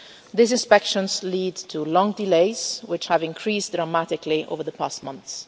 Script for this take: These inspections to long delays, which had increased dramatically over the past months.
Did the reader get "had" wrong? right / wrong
wrong